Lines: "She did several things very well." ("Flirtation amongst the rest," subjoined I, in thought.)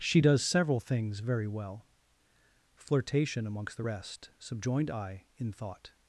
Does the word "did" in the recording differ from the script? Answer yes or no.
yes